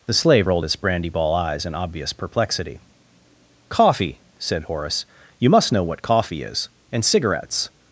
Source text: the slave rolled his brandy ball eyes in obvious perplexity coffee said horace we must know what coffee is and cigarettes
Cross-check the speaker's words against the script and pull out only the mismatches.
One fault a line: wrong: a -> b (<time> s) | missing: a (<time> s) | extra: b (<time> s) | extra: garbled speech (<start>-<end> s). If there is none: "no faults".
wrong: we -> you (5.4 s)